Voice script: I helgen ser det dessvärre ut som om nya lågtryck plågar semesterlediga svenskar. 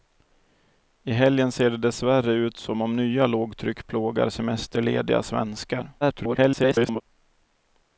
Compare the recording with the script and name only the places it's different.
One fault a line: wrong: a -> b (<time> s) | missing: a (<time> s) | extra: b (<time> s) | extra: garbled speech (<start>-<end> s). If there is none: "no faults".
extra: garbled speech (6.0-7.0 s)